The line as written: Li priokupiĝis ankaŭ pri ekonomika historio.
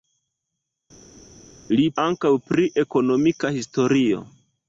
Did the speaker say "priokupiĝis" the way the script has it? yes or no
no